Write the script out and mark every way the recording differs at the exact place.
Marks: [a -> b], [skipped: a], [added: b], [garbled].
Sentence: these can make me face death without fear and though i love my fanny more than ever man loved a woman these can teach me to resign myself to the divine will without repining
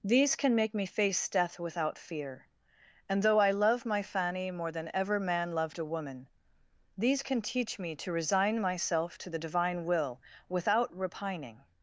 these can make me face death without fear and though i love my fanny more than ever man loved a woman these can teach me to resign myself to the divine will without repining